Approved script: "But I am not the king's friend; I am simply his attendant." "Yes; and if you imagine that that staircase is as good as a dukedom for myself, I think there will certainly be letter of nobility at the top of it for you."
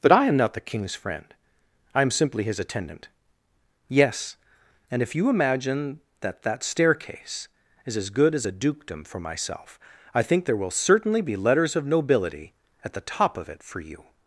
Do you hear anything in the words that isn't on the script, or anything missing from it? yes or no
yes